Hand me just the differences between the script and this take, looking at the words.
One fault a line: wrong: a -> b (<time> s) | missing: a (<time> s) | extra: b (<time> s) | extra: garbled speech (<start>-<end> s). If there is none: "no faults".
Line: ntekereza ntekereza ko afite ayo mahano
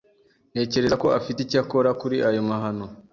missing: ntekereza (0.9 s)
extra: icyo akora kuri (1.4 s)